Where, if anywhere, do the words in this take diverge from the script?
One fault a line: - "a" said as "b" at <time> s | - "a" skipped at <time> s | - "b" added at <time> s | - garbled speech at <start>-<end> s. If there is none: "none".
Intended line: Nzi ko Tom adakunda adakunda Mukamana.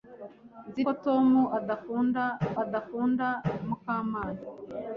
none